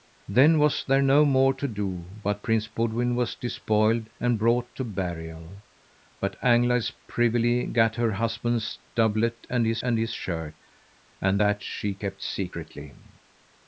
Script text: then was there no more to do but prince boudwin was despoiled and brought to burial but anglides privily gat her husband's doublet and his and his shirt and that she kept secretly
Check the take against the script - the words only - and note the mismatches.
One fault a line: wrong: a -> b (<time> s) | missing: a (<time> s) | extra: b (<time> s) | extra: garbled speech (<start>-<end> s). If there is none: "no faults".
no faults